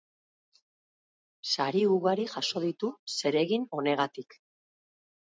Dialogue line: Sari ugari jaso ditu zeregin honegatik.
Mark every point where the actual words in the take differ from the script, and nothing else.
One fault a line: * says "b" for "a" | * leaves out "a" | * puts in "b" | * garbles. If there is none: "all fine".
all fine